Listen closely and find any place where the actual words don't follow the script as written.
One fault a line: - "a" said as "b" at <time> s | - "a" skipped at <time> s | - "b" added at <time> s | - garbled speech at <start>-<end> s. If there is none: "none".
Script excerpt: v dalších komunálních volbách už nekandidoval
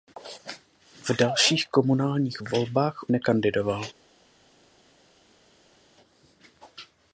- "už" skipped at 3.0 s